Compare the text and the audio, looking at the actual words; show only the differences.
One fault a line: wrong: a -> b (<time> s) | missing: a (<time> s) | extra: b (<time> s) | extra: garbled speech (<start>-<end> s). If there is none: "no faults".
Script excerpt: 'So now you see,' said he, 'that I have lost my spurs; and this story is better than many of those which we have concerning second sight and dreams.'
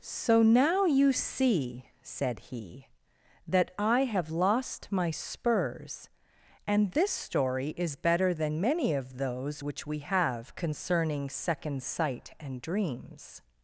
no faults